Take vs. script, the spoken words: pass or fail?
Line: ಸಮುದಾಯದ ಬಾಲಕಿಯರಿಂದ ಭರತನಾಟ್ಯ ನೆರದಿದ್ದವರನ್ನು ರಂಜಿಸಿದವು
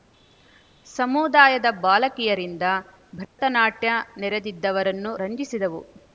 pass